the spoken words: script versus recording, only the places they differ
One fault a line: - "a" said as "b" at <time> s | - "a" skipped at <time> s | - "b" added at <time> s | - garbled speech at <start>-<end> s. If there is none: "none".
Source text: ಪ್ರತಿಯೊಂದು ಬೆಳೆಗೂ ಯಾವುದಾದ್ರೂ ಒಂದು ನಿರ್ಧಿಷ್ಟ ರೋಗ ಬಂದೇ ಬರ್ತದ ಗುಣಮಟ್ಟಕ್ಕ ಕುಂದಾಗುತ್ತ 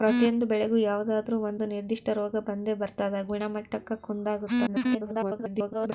- garbled speech at 4.7-5.9 s